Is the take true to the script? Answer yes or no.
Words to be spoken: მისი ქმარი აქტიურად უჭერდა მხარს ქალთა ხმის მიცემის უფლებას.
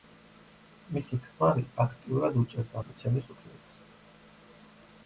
no